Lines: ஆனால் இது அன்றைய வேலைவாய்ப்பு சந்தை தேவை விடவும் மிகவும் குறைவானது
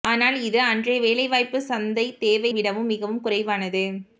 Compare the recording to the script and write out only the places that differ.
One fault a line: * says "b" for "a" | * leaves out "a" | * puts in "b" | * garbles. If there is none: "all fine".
all fine